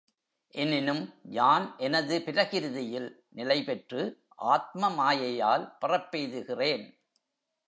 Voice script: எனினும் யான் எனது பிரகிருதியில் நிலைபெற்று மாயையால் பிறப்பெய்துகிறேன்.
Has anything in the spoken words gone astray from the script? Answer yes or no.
yes